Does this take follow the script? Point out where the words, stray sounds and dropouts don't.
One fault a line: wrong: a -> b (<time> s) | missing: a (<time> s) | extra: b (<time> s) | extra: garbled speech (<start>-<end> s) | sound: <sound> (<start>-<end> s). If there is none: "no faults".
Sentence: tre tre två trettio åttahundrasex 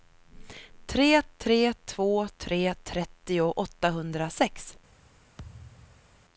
extra: tre (2.4 s)
sound: thud (5.4-6.2 s)